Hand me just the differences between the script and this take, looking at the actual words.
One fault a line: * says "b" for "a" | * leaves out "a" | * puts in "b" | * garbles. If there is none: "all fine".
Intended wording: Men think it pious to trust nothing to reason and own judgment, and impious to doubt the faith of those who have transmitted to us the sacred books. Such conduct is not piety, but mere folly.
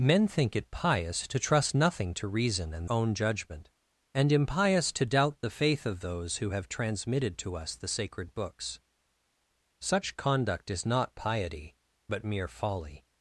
all fine